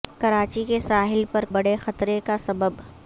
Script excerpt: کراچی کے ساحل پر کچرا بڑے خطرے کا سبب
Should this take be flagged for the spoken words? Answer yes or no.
yes